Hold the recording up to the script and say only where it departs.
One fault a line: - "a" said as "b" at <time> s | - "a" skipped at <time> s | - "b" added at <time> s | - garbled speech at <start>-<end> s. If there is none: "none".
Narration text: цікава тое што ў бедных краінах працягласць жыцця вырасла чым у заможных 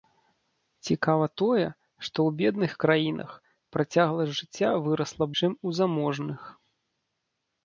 none